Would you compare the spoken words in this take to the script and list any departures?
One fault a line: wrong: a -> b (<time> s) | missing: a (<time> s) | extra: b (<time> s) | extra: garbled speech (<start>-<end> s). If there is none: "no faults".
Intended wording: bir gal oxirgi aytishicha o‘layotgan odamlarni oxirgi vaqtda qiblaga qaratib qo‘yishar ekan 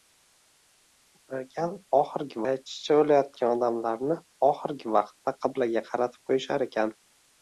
no faults